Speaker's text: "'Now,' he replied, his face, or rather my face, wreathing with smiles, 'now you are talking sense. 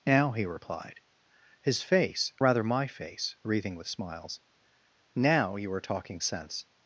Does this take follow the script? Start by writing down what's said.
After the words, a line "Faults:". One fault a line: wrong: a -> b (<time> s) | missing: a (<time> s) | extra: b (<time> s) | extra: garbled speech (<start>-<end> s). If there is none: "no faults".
"'Now,' he replied, his face, rather my face, wreathing with smiles, 'now you are talking sense.
Faults:
missing: or (2.3 s)